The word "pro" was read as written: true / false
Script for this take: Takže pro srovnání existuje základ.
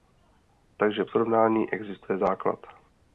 false